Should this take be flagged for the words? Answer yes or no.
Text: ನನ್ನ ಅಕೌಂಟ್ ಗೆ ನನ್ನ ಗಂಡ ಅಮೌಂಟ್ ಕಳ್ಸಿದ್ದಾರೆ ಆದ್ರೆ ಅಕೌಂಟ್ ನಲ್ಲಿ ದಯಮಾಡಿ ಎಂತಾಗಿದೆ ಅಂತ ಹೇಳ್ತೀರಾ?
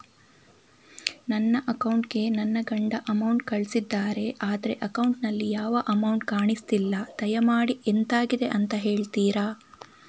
yes